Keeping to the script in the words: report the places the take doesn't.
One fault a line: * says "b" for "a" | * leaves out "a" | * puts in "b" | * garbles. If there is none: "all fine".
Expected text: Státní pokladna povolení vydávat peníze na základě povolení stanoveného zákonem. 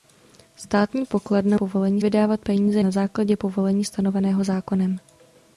all fine